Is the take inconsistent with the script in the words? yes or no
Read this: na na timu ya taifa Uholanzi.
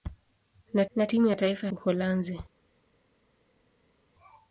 no